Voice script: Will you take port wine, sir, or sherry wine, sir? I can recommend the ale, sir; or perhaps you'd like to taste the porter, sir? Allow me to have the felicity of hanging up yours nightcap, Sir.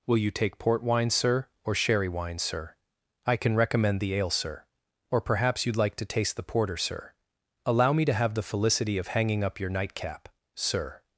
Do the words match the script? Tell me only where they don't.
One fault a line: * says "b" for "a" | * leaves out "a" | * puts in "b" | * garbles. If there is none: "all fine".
* says "your" for "yours"